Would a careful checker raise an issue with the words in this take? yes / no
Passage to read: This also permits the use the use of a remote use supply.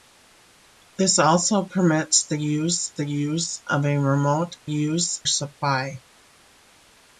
no